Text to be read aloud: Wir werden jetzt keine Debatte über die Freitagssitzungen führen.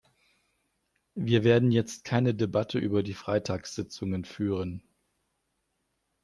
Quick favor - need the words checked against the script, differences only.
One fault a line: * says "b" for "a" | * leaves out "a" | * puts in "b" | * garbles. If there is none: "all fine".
all fine